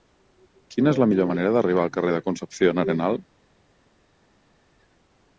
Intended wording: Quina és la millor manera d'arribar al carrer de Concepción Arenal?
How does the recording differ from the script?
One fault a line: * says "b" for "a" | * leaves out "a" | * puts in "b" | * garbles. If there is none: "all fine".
all fine